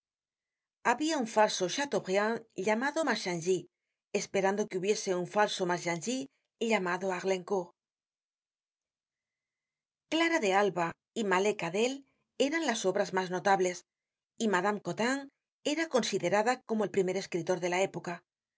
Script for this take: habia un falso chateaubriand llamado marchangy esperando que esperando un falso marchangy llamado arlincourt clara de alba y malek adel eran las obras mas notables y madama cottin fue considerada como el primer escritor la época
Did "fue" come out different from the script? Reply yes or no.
yes